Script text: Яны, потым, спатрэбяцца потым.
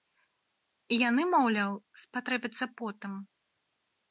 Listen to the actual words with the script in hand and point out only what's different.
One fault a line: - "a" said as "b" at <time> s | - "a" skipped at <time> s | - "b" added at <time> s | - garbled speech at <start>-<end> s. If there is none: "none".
- "потым" said as "маўляў" at 1.3 s